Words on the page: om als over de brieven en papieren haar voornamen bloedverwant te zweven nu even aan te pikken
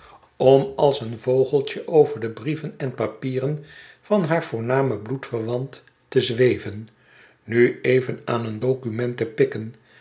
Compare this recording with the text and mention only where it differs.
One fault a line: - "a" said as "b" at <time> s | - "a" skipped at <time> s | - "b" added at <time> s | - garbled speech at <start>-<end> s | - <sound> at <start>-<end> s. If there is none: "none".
- "een vogeltje" added at 1.0 s
- "van" added at 4.0 s
- "een document" added at 8.4 s